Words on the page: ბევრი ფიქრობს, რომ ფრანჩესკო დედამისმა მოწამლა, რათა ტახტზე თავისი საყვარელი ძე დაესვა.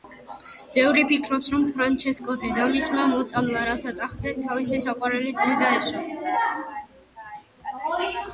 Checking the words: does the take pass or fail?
pass